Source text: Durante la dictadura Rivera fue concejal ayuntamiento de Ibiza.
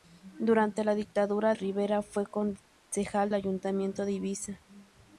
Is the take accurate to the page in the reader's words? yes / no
yes